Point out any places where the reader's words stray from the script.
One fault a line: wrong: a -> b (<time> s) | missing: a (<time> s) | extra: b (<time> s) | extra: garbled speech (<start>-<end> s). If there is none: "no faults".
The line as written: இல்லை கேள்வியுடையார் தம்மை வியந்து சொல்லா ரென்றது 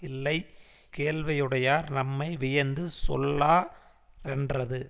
no faults